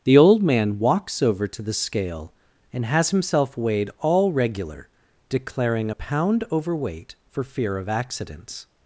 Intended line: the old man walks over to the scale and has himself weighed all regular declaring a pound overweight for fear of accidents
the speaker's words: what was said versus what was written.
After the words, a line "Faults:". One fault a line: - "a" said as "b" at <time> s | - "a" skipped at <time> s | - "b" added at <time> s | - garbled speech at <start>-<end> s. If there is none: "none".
the old man walks over to the scale and has himself weighed all regular declaring a pound overweight for fear of accidents
Faults:
none